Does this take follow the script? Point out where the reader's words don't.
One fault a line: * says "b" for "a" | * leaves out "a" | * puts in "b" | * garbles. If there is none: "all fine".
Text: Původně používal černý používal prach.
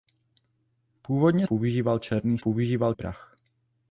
all fine